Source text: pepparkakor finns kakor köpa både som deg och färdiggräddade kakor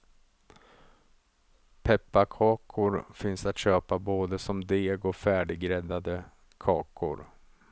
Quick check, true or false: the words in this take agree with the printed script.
false